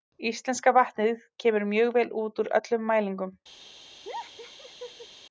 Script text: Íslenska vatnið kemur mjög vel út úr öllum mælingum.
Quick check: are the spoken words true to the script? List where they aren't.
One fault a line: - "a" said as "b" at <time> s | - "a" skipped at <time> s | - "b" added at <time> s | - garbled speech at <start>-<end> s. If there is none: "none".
none